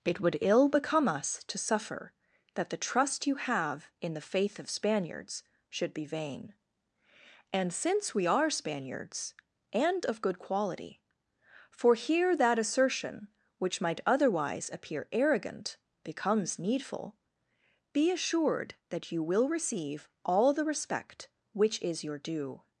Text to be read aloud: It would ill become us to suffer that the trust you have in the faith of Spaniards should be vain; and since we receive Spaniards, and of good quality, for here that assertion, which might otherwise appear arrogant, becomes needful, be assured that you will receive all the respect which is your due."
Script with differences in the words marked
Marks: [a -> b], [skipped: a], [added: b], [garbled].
It would ill become us to suffer that the trust you have in the faith of Spaniards should be vain; and since we [receive -> are] Spaniards, and of good quality, for here that assertion, which might otherwise appear arrogant, becomes needful, be assured that you will receive all the respect which is your due."